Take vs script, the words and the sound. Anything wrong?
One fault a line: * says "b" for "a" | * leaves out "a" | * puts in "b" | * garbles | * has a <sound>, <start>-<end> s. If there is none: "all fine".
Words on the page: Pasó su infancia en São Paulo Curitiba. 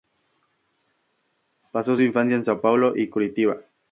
* puts in "y"